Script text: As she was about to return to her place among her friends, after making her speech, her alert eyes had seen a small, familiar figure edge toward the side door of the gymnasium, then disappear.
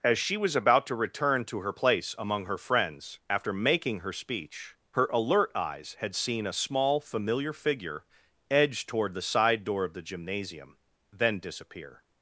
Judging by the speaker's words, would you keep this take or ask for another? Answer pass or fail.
pass